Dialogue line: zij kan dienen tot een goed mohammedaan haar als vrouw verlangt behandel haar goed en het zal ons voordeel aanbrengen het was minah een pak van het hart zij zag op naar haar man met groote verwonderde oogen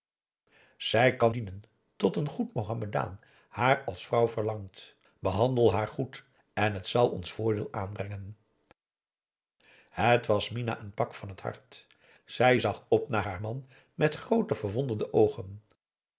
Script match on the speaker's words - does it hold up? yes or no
yes